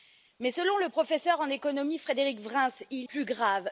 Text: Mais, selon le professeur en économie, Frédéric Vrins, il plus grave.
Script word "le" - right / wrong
right